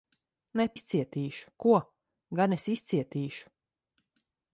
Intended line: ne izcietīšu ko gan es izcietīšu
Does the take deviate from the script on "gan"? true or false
false